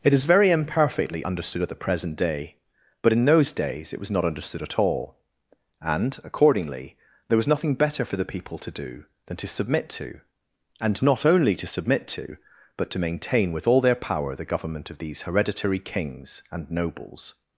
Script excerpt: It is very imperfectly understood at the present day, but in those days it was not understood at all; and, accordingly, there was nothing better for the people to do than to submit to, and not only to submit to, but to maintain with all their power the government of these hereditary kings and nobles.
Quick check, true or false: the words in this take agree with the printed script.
true